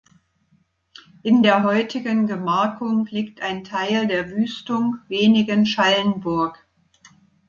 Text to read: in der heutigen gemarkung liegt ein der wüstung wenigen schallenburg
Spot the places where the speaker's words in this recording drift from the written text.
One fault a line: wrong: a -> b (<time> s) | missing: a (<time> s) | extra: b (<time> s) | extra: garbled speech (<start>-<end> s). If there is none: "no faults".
extra: teil (3.6 s)